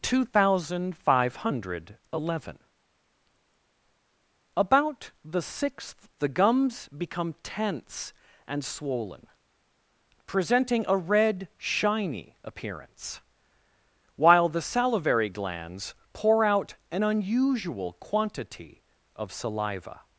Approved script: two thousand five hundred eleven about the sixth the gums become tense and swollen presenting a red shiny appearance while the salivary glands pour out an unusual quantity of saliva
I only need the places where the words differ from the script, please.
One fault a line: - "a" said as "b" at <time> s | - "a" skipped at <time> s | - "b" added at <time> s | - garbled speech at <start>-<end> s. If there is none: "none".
none